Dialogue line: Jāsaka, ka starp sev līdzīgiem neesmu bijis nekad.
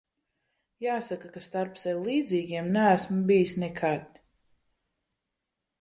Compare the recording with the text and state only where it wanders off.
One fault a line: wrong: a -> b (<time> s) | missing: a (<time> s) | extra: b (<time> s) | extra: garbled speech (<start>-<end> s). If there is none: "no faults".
no faults